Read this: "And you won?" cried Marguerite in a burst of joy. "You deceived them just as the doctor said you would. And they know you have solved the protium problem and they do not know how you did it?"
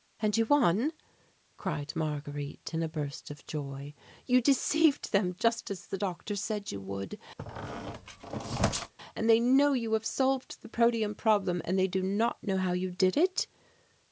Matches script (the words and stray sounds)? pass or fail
fail